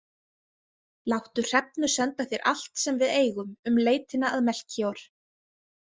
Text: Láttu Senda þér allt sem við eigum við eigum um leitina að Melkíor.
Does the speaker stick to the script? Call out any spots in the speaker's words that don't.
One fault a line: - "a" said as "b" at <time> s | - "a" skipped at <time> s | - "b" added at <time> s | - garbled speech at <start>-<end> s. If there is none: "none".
- "Hrefnu" added at 1.5 s
- "við eigum" skipped at 3.5 s